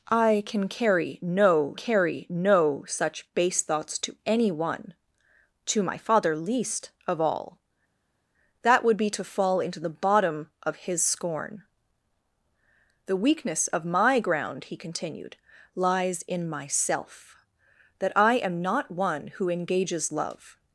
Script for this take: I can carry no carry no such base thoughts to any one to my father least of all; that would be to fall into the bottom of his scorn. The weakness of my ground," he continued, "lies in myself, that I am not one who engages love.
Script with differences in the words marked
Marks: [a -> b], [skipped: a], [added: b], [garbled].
I can carry no carry no such base thoughts to any one to my father least of all; that would be to fall into the bottom of his scorn. The weakness of my ground," he continued, "lies in myself, that I am not one who engages love.